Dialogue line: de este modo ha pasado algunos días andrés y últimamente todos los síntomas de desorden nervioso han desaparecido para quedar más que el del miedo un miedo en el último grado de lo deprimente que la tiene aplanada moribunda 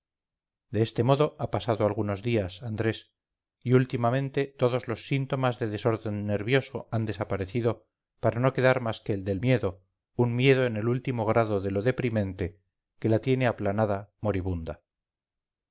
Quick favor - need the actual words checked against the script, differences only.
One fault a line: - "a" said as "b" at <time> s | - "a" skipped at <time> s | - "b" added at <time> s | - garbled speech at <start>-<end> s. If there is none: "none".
- "no" added at 8.4 s